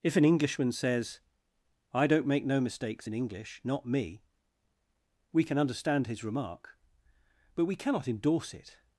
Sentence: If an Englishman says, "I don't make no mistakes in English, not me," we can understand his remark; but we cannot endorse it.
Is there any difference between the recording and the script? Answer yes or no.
no